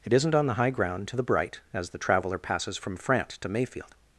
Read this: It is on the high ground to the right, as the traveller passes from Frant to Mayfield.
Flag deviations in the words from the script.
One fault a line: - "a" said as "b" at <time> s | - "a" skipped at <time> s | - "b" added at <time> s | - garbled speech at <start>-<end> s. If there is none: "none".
- "is" said as "isn't" at 0.1 s
- "right" said as "bright" at 1.2 s